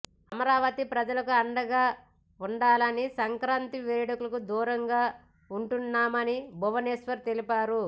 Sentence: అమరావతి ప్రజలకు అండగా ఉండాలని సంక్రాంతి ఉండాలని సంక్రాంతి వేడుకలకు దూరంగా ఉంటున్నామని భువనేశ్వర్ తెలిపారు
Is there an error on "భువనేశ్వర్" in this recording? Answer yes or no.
no